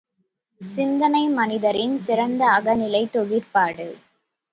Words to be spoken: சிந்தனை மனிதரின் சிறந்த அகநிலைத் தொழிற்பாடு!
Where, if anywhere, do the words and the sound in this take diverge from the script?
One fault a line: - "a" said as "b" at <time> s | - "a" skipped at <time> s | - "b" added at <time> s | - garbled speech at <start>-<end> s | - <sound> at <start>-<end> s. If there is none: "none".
none